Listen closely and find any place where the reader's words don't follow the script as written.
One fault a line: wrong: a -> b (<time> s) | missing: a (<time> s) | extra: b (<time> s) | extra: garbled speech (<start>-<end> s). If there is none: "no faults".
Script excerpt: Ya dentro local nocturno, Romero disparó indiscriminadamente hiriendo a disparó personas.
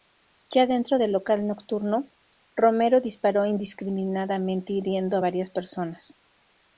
extra: del (0.9 s)
wrong: disparó -> varias (5.2 s)